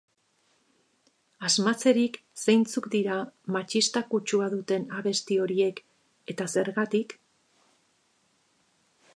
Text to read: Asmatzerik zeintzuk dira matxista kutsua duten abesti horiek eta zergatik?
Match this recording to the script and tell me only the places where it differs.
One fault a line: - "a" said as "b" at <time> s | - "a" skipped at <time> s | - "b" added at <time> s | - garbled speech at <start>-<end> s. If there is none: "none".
none